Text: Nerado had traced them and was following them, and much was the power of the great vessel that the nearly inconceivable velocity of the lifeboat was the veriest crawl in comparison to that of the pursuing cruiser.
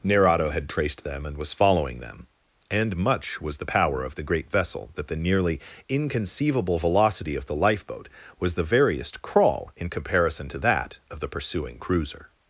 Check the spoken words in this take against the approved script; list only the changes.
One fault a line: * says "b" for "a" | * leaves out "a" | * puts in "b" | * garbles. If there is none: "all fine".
all fine